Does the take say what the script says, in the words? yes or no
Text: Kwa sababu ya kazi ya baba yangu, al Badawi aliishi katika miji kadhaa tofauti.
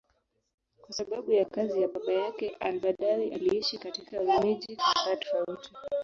no